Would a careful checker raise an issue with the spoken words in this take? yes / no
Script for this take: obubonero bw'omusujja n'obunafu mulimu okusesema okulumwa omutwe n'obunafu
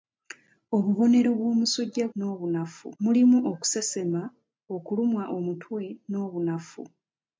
no